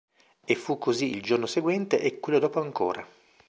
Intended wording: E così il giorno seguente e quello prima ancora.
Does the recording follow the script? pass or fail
fail